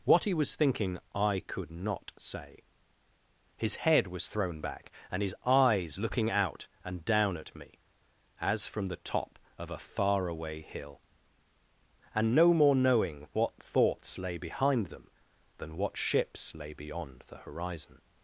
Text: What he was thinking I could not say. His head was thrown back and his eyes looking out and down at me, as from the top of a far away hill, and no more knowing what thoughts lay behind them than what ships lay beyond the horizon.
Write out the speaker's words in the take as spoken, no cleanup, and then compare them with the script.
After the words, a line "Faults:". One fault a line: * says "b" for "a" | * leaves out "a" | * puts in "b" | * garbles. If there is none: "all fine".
What he was thinking I could not say. His head was thrown back and his eyes looking out and down at me, as from the top of a far away hill, and no more knowing what thoughts lay behind them than what ships lay beyond the horizon.
Faults:
all fine